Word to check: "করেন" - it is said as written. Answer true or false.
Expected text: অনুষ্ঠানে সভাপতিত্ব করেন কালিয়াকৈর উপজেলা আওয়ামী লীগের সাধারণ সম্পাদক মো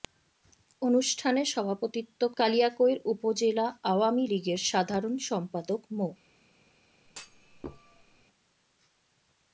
false